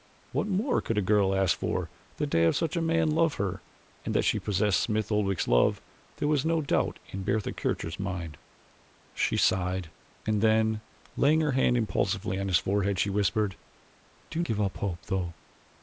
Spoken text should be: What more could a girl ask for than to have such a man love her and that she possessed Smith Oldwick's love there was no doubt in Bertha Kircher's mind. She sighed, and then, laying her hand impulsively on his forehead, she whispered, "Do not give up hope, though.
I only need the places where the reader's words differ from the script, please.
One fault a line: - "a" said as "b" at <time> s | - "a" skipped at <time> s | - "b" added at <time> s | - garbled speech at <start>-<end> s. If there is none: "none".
- "not" skipped at 14.4 s